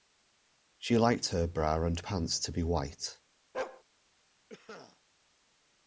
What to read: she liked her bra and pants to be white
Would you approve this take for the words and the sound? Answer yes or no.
no